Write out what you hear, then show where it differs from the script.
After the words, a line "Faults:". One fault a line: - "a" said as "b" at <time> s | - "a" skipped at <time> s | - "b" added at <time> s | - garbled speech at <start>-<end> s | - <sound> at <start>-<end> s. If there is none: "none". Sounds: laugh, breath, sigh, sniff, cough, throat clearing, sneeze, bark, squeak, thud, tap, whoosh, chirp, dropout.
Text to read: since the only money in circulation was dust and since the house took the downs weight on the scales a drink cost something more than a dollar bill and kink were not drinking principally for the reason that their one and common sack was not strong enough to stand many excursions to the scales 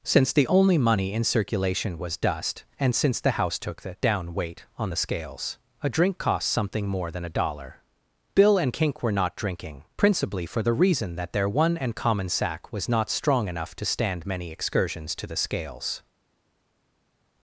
since the only money in circulation was dust and since the house took the down weight on the scales a drink cost something more than a dollar bill and kink were not drinking principally for the reason that their one and common sack was not strong enough to stand many excursions to the scales
Faults:
- "downs" said as "down" at 4.0 s